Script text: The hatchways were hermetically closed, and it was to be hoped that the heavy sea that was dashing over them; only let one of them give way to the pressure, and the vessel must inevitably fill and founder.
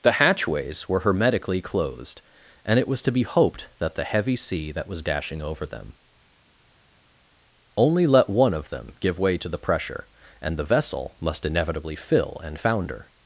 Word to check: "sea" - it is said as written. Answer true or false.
true